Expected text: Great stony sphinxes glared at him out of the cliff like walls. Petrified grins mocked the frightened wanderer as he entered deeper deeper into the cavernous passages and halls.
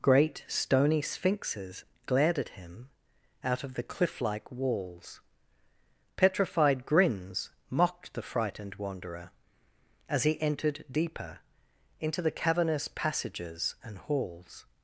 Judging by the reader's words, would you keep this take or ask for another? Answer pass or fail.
fail